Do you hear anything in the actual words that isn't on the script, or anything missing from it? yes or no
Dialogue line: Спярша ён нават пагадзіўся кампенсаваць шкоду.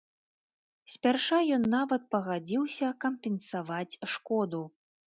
no